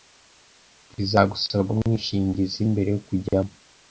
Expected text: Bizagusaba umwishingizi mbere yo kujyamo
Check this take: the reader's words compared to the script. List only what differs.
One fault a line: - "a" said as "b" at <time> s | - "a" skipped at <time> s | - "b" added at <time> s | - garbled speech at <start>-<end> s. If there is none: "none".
none